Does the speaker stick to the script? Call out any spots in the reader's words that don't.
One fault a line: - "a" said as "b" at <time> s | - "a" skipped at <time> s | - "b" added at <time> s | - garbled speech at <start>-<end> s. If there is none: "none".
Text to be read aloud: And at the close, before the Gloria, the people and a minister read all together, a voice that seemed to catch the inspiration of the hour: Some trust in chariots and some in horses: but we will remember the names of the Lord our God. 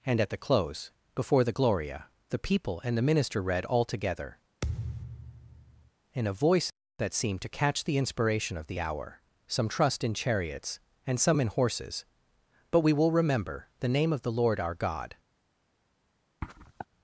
- "a" said as "the" at 3.0 s
- "in" added at 6.1 s
- "names" said as "name" at 13.9 s